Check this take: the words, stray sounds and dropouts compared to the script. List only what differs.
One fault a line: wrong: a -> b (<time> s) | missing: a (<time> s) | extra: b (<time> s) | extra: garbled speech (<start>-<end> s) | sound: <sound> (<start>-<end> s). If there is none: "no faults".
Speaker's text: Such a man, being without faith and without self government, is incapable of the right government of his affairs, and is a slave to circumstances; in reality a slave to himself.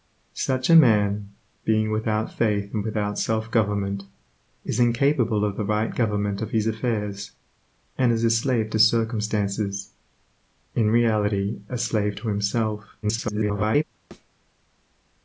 extra: garbled speech (13.0-13.8 s)
sound: thud (14.1-14.3 s)